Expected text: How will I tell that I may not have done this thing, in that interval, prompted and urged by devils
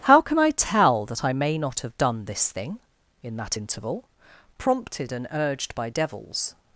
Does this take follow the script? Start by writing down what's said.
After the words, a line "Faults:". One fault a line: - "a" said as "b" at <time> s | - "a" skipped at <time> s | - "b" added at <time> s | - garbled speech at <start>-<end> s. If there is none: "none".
How can I tell that I may not have done this thing, in that interval, prompted and urged by devils
Faults:
- "will" said as "can" at 0.2 s